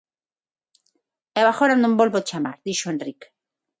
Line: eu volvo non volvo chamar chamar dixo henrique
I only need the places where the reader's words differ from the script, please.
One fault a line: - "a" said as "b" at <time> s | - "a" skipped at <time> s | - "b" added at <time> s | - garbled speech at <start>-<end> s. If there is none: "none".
- "volvo" said as "agora" at 1.5 s
- "chamar" skipped at 2.5 s